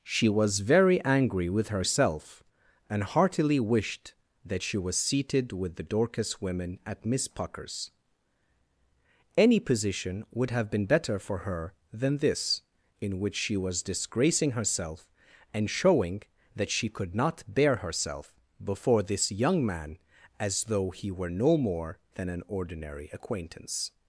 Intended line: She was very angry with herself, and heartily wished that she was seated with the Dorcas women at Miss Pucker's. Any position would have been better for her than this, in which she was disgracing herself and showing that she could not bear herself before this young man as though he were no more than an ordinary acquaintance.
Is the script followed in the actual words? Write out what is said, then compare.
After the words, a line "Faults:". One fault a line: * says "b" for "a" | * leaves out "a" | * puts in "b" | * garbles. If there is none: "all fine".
She was very angry with herself, and heartily wished that she was seated with the Dorcas women at Miss Pucker's. Any position would have been better for her than this, in which she was disgracing herself and showing that she could not bear herself before this young man as though he were no more than an ordinary acquaintance.
Faults:
all fine